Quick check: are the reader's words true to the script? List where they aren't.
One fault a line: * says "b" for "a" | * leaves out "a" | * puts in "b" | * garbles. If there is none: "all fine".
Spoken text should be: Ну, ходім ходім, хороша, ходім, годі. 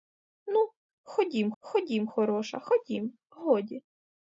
all fine